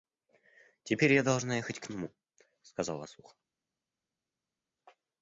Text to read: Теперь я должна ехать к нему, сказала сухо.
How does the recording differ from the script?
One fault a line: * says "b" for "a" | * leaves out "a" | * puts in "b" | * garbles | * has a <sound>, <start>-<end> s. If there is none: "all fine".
all fine